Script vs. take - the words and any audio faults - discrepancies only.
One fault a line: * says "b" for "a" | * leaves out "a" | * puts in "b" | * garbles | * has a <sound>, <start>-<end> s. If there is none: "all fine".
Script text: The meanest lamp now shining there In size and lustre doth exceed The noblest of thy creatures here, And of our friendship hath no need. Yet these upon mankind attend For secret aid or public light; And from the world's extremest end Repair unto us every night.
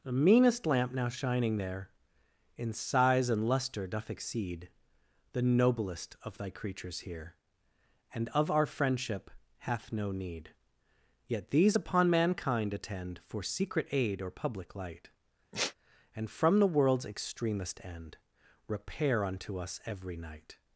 * has a sigh, 15.5-15.7 s